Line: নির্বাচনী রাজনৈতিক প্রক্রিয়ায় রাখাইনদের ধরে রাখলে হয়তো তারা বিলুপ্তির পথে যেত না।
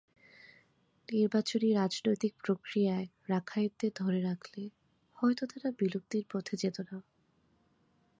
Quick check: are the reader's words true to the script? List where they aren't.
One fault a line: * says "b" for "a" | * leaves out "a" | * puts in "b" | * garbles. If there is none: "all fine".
all fine